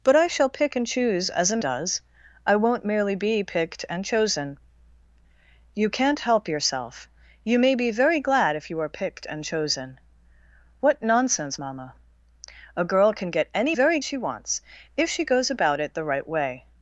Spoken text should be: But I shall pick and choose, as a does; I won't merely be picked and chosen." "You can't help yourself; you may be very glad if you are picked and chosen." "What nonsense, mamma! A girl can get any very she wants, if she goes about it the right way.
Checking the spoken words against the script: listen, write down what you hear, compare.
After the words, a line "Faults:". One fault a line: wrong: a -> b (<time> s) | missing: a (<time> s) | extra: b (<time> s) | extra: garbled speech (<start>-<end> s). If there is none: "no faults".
But I shall pick and choose, as a does; I won't merely be picked and chosen." "You can't help yourself; you may be very glad if you are picked and chosen." "What nonsense, mamma! A girl can get any very she wants, if she goes about it the right way.
Faults:
no faults